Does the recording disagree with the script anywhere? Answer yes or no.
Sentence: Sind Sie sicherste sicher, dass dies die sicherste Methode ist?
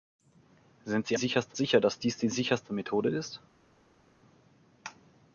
no